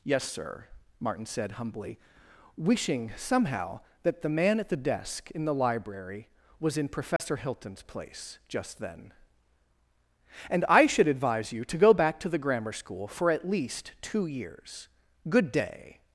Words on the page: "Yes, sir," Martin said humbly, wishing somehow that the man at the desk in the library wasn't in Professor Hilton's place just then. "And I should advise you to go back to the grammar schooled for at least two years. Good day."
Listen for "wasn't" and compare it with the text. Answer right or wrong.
wrong